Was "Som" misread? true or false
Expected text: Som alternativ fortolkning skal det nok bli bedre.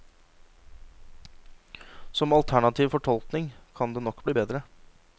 false